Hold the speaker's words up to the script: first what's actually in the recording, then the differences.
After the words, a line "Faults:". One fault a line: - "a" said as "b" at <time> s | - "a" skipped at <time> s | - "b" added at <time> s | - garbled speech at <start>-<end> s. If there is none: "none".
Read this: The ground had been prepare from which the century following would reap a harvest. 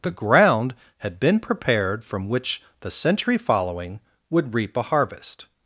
The ground had been prepared from which the century following would reap a harvest.
Faults:
- "prepare" said as "prepared" at 1.4 s